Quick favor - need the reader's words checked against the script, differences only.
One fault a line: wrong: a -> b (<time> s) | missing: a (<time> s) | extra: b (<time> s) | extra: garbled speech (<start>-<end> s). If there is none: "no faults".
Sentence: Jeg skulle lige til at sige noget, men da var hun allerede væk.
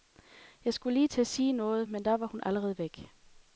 no faults